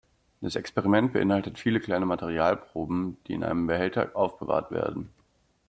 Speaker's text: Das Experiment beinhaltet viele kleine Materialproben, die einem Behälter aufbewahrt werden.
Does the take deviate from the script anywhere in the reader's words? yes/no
yes